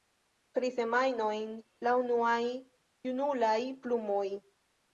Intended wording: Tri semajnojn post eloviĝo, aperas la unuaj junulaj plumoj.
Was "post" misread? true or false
true